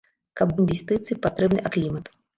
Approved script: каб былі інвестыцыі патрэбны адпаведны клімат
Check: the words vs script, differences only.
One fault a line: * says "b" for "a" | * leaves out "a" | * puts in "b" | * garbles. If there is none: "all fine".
* leaves out "былі"
* leaves out "адпаведны"